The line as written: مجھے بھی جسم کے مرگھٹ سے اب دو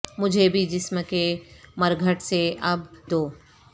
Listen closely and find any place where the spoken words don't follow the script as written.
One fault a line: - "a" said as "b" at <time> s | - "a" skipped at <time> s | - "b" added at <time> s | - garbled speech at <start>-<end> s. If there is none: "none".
none